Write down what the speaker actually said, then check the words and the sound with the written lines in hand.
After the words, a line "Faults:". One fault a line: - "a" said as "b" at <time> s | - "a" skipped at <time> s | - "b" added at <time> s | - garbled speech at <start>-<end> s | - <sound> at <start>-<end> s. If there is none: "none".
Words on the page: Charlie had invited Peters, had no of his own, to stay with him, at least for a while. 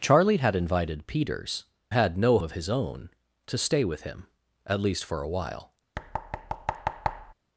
Charlie had invited Peters, had no of his own, to stay with him, at least for a while.
Faults:
- thud at 6.0-7.3 s